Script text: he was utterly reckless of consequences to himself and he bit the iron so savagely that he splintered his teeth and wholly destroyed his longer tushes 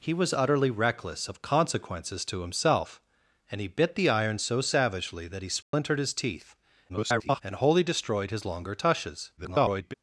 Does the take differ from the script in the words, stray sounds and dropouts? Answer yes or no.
yes